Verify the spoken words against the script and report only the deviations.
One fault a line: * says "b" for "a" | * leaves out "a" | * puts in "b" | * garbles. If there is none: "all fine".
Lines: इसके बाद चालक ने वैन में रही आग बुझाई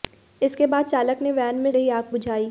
all fine